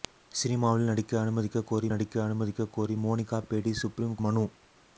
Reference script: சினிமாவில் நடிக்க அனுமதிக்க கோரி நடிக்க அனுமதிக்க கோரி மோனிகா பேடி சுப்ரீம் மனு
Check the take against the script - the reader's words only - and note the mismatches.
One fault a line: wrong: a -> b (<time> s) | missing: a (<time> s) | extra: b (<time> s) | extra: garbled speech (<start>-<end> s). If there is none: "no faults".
no faults